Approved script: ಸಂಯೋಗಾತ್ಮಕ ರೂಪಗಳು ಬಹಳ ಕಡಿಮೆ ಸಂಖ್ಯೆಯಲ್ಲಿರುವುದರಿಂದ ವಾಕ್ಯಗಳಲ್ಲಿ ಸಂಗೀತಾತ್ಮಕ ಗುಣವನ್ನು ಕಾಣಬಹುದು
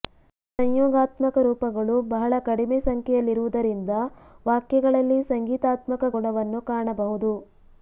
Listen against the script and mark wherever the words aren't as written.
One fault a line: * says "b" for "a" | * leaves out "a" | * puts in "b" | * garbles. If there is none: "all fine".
all fine